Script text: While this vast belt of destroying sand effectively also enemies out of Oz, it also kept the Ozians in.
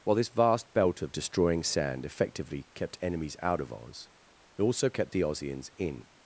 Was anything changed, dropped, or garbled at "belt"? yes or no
no